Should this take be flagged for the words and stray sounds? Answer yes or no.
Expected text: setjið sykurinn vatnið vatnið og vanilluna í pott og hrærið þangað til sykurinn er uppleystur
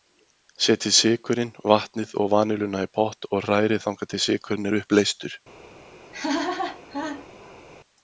yes